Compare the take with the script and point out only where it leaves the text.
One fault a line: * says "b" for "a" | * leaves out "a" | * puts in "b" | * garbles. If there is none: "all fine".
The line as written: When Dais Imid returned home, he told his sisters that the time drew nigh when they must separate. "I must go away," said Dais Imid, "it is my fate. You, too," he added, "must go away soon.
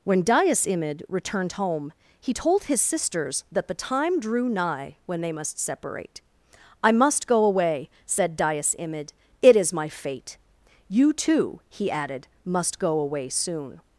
all fine